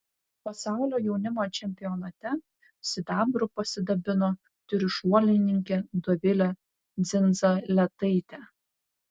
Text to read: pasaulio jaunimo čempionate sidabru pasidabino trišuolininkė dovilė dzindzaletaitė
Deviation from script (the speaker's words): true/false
false